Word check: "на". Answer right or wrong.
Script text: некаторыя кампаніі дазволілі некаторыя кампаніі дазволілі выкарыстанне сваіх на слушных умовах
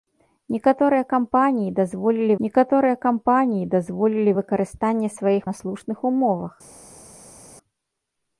right